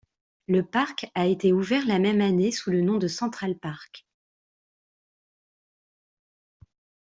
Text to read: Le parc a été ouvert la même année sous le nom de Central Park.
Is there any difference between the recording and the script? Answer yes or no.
no